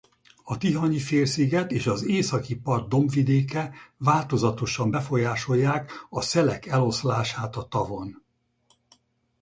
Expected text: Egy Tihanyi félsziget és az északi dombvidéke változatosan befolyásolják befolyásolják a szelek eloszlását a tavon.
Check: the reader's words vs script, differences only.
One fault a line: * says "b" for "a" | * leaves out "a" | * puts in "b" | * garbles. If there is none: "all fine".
* says "A" for "Egy"
* puts in "part"
* leaves out "befolyásolják"